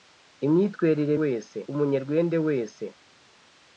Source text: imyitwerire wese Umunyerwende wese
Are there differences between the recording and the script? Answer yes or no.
no